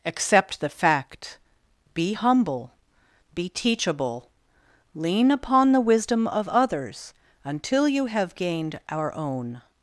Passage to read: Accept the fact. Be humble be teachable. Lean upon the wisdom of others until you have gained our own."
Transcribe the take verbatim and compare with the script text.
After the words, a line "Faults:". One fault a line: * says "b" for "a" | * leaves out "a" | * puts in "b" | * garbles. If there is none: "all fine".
Accept the fact. Be humble be teachable. Lean upon the wisdom of others until you have gained our own."
Faults:
all fine